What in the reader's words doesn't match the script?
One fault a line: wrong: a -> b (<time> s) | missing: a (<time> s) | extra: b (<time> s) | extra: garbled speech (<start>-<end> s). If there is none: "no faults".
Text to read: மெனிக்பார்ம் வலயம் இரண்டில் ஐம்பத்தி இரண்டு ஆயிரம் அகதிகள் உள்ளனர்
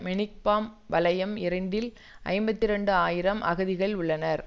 no faults